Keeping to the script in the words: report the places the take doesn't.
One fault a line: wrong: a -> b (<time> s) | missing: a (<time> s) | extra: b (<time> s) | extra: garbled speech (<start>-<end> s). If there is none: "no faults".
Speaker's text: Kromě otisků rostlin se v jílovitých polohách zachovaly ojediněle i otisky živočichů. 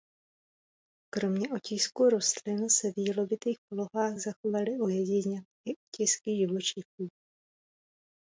no faults